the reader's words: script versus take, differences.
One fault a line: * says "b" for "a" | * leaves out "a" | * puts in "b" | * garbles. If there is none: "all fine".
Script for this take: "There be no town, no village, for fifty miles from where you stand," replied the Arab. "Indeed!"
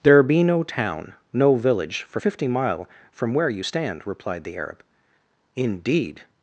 * says "mile" for "miles"